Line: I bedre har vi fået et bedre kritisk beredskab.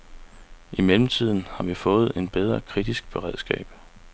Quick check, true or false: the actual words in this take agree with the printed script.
false